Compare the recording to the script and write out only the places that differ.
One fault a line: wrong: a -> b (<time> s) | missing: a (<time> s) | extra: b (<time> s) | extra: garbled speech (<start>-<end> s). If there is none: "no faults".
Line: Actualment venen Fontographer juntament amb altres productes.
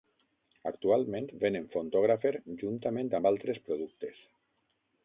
no faults